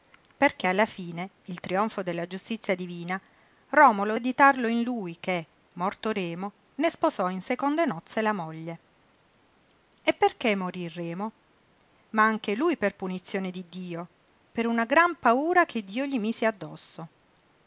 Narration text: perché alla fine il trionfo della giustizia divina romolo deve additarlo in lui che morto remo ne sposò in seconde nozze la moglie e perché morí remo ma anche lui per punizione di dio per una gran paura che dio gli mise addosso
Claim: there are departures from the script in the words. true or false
true